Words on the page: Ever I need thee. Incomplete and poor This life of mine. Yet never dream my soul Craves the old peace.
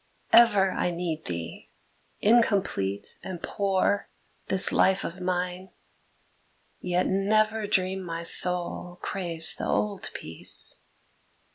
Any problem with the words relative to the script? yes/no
no